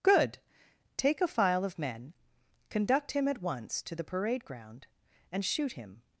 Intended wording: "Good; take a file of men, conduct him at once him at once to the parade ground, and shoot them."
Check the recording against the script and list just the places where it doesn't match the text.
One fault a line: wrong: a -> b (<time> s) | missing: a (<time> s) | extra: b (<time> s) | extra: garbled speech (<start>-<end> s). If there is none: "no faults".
missing: him at once (3.8 s)
wrong: them -> him (5.7 s)